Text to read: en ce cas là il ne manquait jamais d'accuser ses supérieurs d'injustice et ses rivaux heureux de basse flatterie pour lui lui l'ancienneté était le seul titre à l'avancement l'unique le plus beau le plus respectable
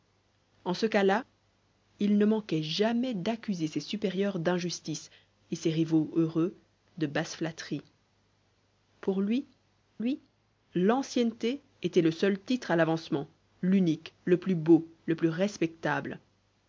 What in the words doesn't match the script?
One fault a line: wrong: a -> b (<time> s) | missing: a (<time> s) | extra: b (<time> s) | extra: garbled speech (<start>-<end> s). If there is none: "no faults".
no faults